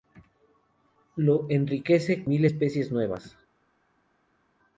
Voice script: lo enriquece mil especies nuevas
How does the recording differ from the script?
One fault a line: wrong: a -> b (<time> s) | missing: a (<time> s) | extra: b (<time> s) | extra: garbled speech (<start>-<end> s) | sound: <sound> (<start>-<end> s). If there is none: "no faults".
no faults